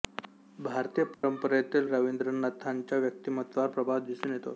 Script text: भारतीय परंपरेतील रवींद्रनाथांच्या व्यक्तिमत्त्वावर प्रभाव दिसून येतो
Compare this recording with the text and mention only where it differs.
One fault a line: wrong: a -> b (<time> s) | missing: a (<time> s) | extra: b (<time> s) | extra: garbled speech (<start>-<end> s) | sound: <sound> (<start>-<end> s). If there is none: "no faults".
sound: dropout (1.1-1.2 s)